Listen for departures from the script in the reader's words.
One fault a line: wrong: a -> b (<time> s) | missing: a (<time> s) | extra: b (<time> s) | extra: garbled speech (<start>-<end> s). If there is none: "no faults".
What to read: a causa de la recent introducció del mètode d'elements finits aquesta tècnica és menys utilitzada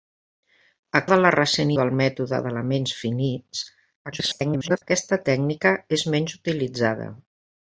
missing: causa (1.0 s)
missing: introducció (1.7 s)
extra: garbled speech (4.1-4.8 s)